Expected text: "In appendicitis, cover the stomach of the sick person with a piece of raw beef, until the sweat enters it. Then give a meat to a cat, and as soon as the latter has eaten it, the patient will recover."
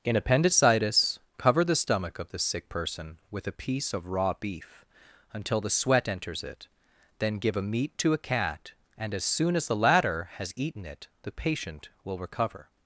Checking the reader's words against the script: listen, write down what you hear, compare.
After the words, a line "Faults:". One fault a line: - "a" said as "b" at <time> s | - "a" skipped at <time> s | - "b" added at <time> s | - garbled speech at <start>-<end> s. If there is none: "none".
"In appendicitis, cover the stomach of the sick person with a piece of raw beef, until the sweat enters it. Then give a meat to a cat, and as soon as the latter has eaten it, the patient will recover."
Faults:
none